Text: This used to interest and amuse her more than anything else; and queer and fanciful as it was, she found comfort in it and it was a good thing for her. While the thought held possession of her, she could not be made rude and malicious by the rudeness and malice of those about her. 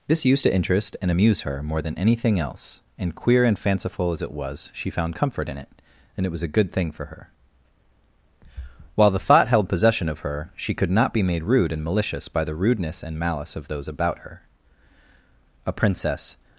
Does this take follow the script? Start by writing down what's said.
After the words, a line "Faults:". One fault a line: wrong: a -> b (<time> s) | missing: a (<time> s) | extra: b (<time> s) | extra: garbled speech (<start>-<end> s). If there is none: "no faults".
This used to interest and amuse her more than anything else; and queer and fanciful as it was, she found comfort in it and it was a good thing for her. While the thought held possession of her, she could not be made rude and malicious by the rudeness and malice of those about her. "A princess
Faults:
extra: A princess (15.6 s)